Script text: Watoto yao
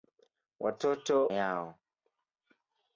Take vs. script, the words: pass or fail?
pass